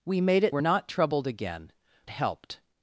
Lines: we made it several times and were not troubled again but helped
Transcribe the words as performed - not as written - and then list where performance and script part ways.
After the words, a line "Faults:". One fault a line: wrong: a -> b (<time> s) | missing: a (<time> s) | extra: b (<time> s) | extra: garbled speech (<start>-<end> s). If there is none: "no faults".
we made it were not troubled again helped
Faults:
missing: several times and (0.6 s)
missing: but (1.7 s)